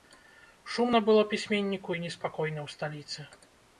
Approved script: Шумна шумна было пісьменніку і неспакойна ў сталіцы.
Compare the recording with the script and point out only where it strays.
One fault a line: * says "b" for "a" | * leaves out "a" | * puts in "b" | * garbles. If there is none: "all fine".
* leaves out "шумна"